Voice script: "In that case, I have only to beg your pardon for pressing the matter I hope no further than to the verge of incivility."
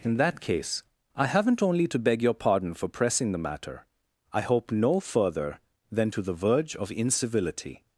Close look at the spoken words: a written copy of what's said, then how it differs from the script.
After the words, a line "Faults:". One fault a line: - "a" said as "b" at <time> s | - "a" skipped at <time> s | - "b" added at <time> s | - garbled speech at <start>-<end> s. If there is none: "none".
"In that case, I haven't only to beg your pardon for pressing the matter I hope no further than to the verge of incivility."
Faults:
- "have" said as "haven't" at 1.3 s